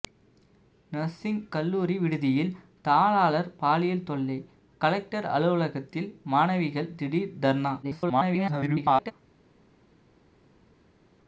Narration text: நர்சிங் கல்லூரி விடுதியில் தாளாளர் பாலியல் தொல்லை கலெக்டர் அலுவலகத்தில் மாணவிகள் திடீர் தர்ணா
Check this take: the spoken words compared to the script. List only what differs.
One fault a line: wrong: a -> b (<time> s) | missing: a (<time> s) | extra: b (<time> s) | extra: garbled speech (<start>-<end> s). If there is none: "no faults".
extra: garbled speech (7.8-9.1 s)